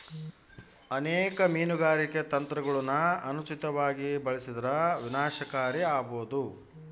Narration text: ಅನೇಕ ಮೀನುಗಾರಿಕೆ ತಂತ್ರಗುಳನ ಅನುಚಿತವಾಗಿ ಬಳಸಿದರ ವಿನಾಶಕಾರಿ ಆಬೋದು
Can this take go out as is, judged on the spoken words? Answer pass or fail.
pass